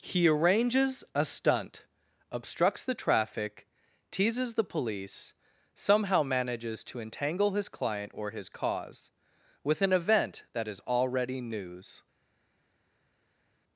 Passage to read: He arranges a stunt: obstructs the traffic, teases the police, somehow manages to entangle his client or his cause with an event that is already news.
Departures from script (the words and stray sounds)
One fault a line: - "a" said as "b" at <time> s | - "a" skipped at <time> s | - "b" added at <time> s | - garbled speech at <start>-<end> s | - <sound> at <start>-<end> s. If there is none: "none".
none